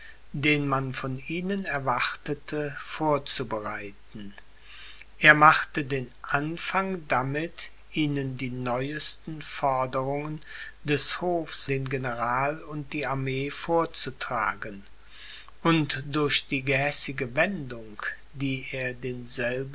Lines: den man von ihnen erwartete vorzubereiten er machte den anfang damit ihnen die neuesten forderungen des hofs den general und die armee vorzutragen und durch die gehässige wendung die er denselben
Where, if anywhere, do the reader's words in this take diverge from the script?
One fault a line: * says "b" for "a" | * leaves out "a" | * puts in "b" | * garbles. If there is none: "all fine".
all fine